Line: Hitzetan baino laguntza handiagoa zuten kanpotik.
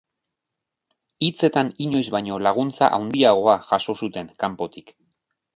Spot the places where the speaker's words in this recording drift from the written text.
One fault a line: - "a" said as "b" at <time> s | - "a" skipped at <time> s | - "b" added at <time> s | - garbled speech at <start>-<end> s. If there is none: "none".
- "inoiz" added at 1.9 s
- "jaso" added at 3.7 s